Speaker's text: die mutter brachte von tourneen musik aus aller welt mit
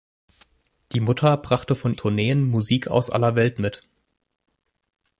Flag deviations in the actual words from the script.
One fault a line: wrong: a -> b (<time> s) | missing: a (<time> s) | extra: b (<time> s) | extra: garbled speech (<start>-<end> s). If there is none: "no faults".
no faults